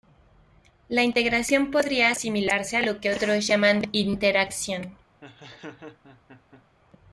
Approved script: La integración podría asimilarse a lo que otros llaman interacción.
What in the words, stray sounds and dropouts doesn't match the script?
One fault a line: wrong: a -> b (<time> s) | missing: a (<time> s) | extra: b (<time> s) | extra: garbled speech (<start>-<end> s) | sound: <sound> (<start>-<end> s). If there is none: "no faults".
sound: laugh (5.2-6.6 s)